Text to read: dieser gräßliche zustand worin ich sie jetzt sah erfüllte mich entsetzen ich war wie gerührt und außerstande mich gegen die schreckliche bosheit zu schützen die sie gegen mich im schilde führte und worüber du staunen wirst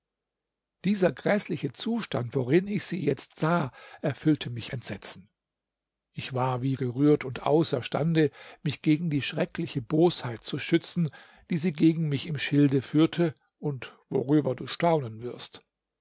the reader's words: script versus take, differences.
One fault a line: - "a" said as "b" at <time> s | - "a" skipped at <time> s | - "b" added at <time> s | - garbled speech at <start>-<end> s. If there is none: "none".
none